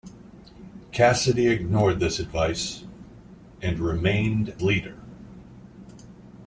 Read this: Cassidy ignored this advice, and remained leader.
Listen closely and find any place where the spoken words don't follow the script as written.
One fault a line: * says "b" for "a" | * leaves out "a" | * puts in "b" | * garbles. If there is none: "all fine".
all fine